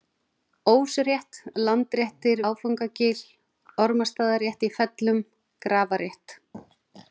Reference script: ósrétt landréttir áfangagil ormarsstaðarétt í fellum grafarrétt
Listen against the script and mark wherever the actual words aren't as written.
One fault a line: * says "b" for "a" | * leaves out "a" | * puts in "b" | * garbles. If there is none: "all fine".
all fine